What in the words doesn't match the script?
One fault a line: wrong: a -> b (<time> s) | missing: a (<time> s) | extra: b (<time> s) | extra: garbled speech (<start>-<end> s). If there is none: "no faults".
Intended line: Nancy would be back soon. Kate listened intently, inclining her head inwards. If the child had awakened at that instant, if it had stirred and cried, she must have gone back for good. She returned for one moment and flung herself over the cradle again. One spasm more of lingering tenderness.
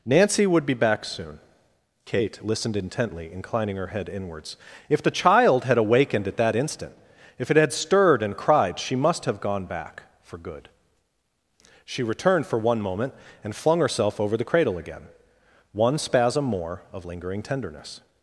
no faults